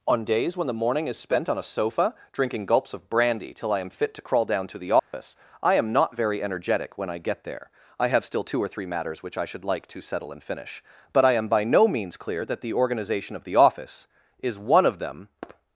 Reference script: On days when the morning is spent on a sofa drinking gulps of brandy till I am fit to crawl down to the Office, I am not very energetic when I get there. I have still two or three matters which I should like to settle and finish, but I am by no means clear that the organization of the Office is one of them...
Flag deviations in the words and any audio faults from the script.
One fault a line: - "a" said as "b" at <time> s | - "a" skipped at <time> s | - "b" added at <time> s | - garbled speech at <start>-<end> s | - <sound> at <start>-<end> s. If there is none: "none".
- dropout at 5.0-5.1 s